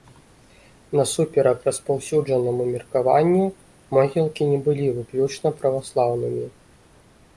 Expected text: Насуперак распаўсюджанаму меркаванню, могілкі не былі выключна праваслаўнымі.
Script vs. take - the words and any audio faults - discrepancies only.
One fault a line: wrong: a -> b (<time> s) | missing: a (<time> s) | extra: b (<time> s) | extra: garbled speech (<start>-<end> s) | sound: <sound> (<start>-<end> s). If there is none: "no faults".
no faults